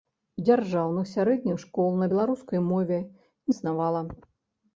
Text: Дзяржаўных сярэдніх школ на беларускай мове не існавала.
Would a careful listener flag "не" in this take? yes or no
yes